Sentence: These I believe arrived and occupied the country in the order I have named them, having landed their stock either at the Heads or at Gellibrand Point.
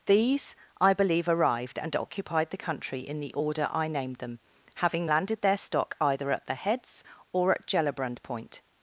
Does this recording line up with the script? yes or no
no